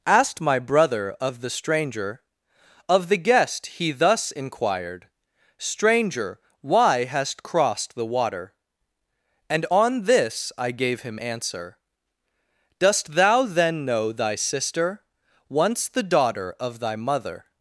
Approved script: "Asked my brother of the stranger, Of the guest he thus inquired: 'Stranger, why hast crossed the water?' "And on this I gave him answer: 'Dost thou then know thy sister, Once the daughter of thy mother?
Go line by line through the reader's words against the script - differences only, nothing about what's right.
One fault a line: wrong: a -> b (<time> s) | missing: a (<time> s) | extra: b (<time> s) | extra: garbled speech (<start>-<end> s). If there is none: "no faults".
no faults